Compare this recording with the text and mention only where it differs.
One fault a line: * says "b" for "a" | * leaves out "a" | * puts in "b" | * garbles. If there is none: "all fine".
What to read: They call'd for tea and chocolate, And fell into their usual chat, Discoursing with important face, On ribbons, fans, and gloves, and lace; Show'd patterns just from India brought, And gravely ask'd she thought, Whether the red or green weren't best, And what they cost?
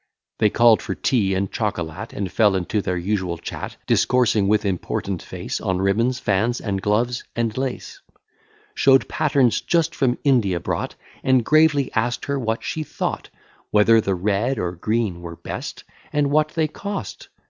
* puts in "her what"
* says "were" for "weren't"